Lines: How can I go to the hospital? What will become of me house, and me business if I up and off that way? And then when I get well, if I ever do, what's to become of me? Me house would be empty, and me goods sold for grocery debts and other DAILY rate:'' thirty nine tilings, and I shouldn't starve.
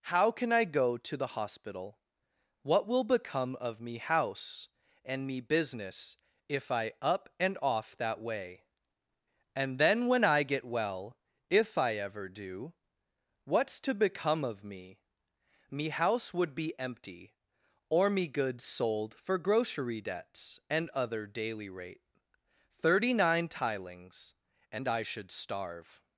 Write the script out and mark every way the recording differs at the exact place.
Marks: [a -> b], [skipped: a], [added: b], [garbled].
How can I go to the hospital? What will become of me house, and me business if I up and off that way? And then when I get well, if I ever do, what's to become of me? Me house would be empty, [and -> or] me goods sold for grocery debts and other DAILY rate:'' thirty nine tilings, and I [shouldn't -> should] starve.